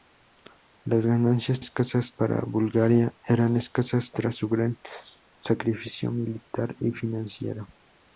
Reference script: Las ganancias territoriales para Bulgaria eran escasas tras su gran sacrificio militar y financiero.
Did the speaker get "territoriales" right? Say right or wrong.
wrong